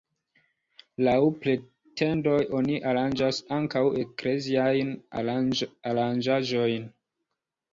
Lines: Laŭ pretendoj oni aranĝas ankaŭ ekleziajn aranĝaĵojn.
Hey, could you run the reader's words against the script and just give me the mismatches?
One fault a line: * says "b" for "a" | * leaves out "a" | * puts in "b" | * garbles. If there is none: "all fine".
all fine